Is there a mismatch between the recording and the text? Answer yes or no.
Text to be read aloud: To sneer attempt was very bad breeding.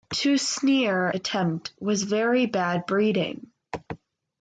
no